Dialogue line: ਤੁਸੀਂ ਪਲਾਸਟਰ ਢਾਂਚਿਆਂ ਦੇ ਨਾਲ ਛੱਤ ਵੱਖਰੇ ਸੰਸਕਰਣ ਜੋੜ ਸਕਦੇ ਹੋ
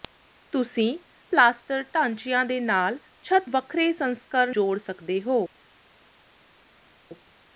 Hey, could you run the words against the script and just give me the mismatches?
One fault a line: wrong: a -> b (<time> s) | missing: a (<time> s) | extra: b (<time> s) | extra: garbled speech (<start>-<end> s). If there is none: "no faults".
no faults